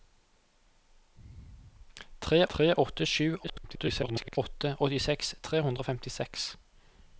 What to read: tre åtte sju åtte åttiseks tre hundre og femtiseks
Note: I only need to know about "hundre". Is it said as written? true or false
true